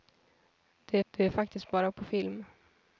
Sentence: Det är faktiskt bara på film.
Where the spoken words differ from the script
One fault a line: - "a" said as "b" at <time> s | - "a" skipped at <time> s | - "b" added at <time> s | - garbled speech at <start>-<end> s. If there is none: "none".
- "det" added at 1.1 s